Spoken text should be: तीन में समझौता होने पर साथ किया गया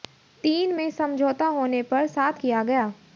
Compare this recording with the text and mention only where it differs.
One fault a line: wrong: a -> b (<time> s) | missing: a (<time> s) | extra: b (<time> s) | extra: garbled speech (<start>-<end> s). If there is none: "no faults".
no faults